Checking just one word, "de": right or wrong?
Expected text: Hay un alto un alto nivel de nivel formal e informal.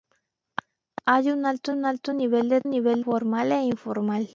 right